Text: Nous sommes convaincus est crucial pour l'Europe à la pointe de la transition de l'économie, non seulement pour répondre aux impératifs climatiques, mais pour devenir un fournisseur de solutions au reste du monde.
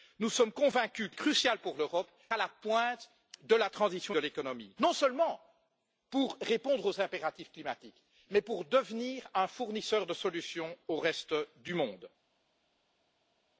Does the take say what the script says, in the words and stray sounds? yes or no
yes